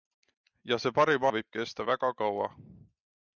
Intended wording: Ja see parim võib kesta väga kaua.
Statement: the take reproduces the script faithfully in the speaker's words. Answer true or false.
true